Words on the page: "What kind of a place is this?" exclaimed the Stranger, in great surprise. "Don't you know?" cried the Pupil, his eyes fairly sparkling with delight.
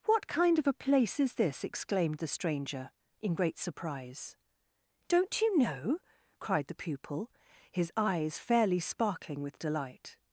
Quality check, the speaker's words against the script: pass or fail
pass